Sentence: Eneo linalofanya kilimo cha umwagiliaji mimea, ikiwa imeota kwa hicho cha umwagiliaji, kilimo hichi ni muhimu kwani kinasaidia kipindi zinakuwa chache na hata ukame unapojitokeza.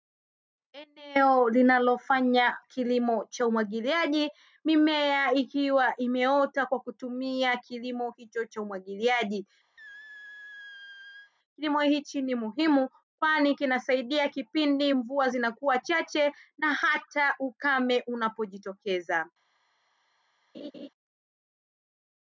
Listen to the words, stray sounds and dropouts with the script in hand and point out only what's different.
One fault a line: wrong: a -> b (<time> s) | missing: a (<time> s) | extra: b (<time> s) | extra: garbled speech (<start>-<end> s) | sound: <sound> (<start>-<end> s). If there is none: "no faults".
extra: kutumia kilimo (6.8 s)
sound: squeak (9.8-11.3 s)
extra: mvua (14.9 s)
sound: laugh (20.5-20.9 s)